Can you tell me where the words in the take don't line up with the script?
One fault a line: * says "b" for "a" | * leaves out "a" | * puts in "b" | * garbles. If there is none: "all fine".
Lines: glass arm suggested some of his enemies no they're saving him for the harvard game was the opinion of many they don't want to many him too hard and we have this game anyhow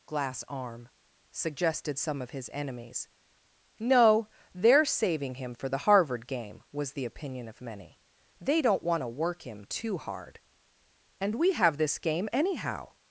* says "work" for "many"